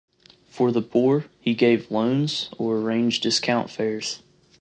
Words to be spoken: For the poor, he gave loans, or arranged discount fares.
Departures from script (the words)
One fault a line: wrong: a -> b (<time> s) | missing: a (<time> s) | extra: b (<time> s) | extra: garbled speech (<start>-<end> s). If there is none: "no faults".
no faults